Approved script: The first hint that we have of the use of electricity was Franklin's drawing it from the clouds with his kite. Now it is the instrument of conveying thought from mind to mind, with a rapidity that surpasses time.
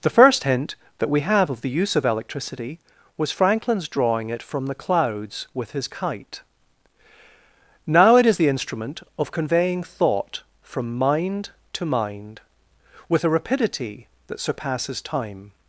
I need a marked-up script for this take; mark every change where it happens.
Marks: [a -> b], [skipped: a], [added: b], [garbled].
The first hint that we have of the use of electricity was Franklin's drawing it from the clouds with his kite. Now it is the instrument of conveying thought from mind to mind, with a rapidity that surpasses time.